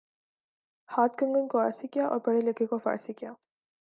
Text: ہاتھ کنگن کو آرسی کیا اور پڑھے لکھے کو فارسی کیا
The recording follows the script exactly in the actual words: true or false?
true